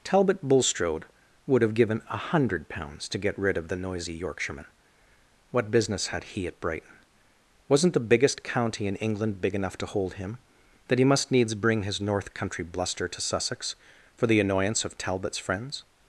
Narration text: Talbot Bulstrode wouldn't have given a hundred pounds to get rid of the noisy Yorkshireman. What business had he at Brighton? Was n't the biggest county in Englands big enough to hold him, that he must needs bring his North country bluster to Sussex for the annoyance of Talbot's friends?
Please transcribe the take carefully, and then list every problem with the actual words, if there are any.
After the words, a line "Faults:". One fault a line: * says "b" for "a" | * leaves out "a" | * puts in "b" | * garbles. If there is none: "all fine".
Talbot Bulstrode would have given a hundred pounds to get rid of the noisy Yorkshireman. What business had he at Brighton? Was n't the biggest county in England big enough to hold him, that he must needs bring his North country bluster to Sussex for the annoyance of Talbot's friends?
Faults:
* says "would" for "wouldn't"
* says "England" for "Englands"